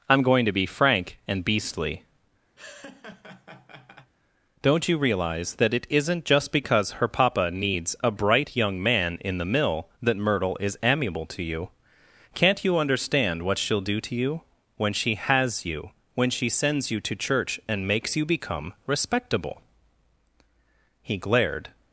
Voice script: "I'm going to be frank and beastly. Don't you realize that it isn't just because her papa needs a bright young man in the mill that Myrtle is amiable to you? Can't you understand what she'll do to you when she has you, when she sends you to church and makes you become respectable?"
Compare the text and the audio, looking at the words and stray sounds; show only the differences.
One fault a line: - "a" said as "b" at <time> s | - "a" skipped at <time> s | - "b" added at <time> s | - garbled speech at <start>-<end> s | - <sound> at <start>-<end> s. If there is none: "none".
- laugh at 2.6-4.1 s
- "He glared" added at 21.0 s